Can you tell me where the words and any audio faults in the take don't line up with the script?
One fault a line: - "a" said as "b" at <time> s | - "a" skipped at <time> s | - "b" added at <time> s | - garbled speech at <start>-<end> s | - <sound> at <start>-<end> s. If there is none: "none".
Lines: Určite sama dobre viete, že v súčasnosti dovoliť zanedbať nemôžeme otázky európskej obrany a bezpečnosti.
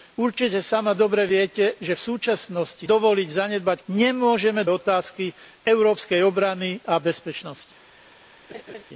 - laugh at 8.5-8.8 s